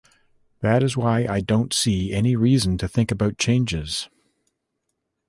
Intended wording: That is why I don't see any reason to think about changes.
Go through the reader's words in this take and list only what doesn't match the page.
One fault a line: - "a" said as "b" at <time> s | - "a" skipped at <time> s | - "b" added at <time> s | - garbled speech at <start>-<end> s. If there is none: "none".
none